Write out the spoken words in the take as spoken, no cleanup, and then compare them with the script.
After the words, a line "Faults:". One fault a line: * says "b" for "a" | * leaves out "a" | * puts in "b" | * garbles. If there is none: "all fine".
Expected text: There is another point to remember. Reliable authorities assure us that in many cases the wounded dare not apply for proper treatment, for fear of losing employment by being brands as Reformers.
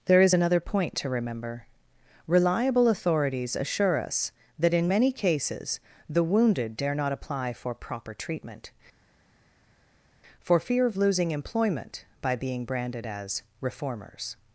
There is another point to remember. Reliable authorities assure us that in many cases the wounded dare not apply for proper treatment, for fear of losing employment by being branded as Reformers.
Faults:
* says "branded" for "brands"